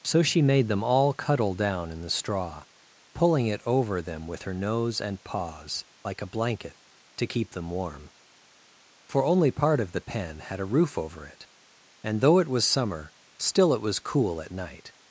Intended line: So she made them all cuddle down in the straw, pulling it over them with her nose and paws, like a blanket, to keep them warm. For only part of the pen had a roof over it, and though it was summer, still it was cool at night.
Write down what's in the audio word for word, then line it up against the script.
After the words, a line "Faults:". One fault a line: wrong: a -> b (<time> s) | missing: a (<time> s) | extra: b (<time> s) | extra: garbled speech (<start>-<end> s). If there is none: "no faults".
So she made them all cuddle down in the straw, pulling it over them with her nose and paws, like a blanket, to keep them warm. For only part of the pen had a roof over it, and though it was summer, still it was cool at night.
Faults:
no faults